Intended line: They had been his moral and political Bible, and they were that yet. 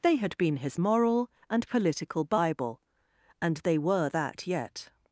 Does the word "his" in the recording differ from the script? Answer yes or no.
no